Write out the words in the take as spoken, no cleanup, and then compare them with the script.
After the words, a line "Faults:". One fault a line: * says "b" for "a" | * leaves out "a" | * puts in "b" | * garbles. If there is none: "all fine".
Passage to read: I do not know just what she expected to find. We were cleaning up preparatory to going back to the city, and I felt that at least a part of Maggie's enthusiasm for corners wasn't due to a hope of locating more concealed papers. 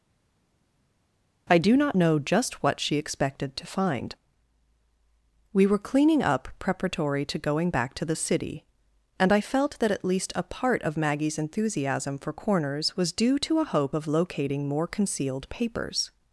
I do not know just what she expected to find. We were cleaning up preparatory to going back to the city, and I felt that at least a part of Maggie's enthusiasm for corners was due to a hope of locating more concealed papers.
Faults:
* says "was" for "wasn't"